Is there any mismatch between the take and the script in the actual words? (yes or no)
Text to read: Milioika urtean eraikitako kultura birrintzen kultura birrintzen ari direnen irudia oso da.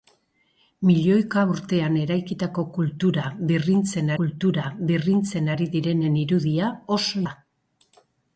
no